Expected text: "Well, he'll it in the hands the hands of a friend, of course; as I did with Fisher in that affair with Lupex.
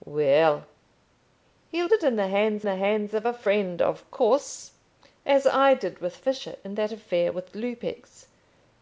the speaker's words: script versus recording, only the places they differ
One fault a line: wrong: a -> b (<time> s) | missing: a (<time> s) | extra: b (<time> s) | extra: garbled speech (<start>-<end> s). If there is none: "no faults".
no faults